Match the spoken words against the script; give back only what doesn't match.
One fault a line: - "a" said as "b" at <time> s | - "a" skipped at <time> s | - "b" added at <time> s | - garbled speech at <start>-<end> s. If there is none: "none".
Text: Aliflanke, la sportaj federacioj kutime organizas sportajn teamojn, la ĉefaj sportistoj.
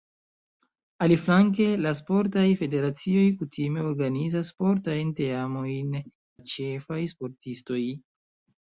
none